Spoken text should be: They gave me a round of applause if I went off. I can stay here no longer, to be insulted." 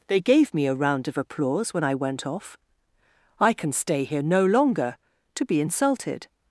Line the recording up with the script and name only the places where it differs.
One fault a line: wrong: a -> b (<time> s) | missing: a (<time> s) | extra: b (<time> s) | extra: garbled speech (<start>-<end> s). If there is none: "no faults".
wrong: if -> when (1.7 s)